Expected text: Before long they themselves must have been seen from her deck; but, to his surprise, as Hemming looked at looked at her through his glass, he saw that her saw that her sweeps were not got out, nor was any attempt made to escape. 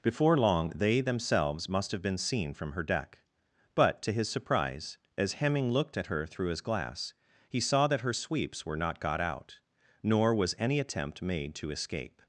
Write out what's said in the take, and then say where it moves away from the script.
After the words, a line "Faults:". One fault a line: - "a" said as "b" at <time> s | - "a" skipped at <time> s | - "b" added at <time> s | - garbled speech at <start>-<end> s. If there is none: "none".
Before long they themselves must have been seen from her deck; but, to his surprise, as Hemming looked at her through his glass, he saw that her sweeps were not got out, nor was any attempt made to escape.
Faults:
- "looked at" skipped at 6.1 s
- "saw that her" skipped at 8.1 s